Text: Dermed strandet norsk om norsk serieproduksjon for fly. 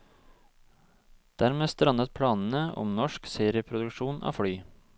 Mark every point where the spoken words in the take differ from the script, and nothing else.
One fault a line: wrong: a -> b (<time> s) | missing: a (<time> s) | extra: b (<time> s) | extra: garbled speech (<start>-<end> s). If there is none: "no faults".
wrong: norsk -> planene (2.1 s)
wrong: for -> av (4.2 s)